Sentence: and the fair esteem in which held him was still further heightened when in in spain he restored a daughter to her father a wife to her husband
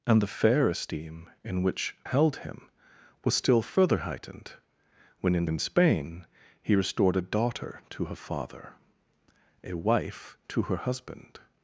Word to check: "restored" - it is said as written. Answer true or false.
true